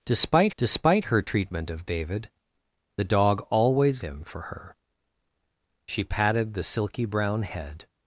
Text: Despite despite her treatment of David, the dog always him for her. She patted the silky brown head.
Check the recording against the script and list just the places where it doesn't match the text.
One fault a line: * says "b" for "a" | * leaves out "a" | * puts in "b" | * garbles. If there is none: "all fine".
all fine